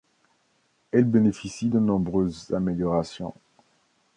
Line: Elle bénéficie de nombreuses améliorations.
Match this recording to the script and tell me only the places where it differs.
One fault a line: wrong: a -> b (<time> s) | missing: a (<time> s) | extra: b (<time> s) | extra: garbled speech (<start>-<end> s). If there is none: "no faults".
no faults